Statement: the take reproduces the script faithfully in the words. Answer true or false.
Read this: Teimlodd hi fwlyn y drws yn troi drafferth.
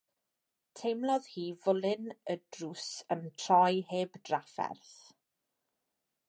false